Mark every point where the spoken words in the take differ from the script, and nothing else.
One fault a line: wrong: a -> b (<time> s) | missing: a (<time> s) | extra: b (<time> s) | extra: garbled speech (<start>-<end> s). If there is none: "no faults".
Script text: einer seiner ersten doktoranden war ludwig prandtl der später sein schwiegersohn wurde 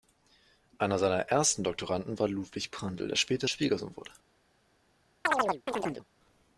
missing: sein (3.5 s)